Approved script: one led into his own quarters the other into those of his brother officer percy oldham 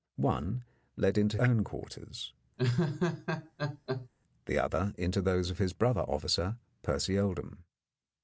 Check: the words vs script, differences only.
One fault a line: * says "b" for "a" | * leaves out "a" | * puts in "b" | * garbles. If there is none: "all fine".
* leaves out "his"